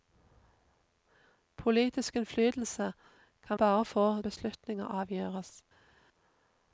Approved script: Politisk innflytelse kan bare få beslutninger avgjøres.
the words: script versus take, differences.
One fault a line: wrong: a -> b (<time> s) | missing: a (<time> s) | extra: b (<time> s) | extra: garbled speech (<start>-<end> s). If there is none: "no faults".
no faults